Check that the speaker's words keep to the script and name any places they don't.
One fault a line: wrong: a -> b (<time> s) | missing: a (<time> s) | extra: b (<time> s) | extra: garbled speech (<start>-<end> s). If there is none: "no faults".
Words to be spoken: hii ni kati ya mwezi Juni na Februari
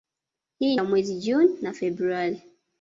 missing: ni kati (0.8 s)